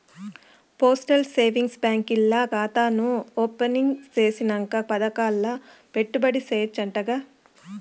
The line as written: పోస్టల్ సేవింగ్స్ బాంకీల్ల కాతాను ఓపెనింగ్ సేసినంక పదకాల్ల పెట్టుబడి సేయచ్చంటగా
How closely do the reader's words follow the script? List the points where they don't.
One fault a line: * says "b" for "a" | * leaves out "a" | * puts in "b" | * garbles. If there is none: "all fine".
all fine